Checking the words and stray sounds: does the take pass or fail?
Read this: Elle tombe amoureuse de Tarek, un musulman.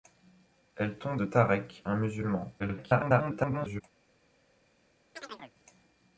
fail